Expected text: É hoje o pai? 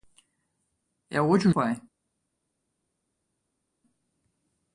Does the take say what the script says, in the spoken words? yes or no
yes